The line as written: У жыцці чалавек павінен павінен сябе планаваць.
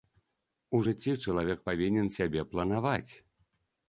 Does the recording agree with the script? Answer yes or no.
no